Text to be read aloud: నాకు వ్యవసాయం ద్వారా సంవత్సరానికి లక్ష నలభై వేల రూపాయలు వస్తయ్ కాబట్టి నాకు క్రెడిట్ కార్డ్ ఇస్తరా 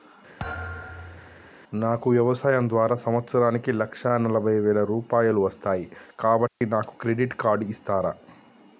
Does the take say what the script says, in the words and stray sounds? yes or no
no